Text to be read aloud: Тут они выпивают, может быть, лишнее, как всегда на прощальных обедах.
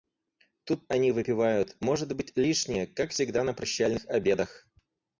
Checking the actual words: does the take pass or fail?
pass